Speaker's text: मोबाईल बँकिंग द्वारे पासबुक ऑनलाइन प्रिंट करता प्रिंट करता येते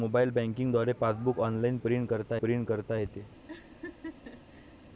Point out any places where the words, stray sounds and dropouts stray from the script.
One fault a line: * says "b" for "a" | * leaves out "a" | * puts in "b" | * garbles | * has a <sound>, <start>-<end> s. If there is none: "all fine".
* has a laugh, 3.5-4.8 s